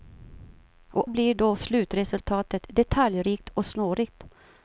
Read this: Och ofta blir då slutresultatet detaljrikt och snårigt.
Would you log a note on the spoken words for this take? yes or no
yes